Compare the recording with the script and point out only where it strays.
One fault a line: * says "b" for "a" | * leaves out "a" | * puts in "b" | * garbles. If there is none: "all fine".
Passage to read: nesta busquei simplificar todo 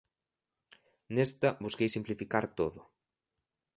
all fine